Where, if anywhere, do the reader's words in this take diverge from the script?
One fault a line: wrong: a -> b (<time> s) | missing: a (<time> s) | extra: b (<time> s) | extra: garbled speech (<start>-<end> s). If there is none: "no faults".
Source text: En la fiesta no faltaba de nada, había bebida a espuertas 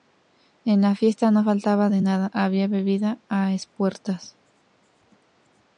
no faults